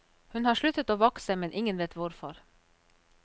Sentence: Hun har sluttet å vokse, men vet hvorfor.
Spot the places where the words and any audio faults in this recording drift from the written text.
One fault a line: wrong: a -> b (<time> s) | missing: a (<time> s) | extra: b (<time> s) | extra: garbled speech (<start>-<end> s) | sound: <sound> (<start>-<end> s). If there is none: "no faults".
extra: ingen (1.5 s)